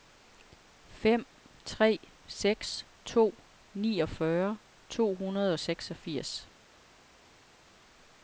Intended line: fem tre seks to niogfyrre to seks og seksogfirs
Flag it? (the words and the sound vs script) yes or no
yes